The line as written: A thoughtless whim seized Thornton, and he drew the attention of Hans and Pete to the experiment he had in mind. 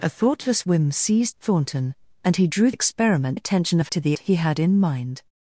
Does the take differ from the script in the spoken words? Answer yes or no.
yes